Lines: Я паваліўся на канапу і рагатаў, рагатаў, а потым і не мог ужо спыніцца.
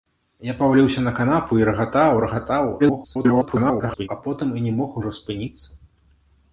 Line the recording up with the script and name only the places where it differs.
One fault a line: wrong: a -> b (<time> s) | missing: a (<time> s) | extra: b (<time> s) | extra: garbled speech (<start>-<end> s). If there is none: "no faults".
extra: garbled speech (2.8-4.1 s)